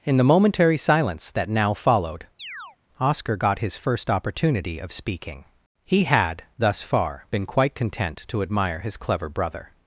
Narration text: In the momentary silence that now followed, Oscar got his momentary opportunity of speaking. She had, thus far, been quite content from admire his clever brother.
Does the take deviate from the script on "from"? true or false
true